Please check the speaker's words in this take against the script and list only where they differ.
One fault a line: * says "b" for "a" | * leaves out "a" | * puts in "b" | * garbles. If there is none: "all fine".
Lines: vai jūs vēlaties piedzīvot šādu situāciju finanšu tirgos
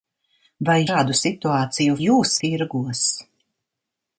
* leaves out "jūs vēlaties piedzīvot"
* says "jūs" for "finanšu"